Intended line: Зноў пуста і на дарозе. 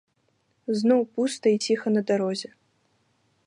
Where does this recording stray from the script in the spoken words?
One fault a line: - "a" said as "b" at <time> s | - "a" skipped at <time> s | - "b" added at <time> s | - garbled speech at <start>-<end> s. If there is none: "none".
- "ціха" added at 1.6 s